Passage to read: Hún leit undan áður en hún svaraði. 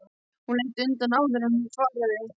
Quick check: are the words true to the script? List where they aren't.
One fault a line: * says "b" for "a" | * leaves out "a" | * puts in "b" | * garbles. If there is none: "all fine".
all fine